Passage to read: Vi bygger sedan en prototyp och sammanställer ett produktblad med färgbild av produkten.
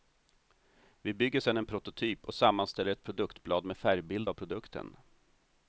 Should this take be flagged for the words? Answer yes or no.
no